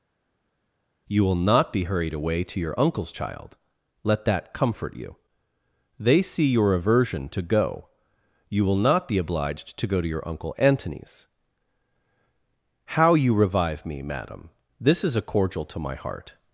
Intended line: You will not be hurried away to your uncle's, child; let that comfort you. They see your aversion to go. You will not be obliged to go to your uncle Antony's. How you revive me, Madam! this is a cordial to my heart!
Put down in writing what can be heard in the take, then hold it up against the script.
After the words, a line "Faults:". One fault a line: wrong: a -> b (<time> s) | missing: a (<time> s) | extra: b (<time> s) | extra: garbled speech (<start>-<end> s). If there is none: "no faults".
You will not be hurried away to your uncle's, child; let that comfort you. They see your aversion to go. You will not be obliged to go to your uncle Antony's. How you revive me, Madam! this is a cordial to my heart!
Faults:
no faults